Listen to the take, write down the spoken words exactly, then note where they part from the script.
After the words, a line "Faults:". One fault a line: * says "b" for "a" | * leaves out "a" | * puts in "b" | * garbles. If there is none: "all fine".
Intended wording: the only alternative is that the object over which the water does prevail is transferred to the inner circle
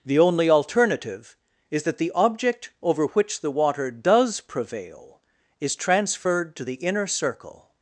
the only alternative is that the object over which the water does prevail is transferred to the inner circle
Faults:
all fine